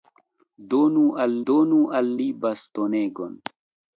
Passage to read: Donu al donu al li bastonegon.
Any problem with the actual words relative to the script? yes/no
no